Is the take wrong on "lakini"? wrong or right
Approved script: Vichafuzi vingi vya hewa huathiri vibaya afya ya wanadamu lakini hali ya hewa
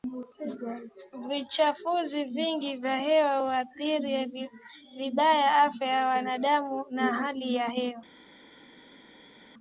wrong